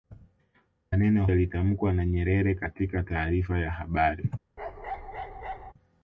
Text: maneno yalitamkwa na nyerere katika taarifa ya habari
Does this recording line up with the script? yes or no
yes